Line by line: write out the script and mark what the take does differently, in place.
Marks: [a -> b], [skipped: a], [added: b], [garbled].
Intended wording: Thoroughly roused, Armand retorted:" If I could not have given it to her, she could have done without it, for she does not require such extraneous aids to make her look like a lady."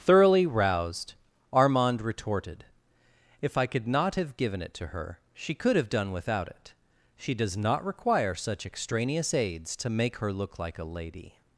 Thoroughly roused, Armand retorted:" If I could not have given it to her, she could have done without it, [skipped: for] she does not require such extraneous aids to make her look like a lady."